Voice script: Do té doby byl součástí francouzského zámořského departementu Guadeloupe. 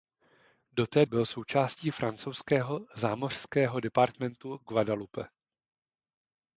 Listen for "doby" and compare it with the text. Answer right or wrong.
wrong